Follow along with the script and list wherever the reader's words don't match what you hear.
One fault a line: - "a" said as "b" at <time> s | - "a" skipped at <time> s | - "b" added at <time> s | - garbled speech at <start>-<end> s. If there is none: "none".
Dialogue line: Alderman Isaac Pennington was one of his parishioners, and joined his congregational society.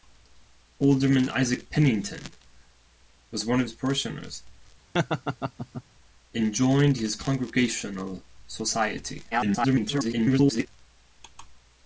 - garbled speech at 9.3-10.7 s